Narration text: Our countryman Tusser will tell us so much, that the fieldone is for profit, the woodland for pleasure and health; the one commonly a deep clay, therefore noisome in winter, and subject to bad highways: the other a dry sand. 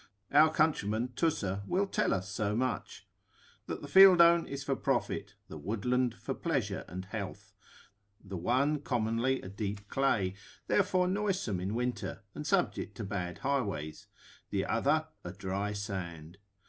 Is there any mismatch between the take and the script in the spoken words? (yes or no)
no